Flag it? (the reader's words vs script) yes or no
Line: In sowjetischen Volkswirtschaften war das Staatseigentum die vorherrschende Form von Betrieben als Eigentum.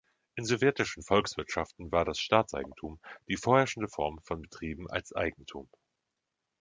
no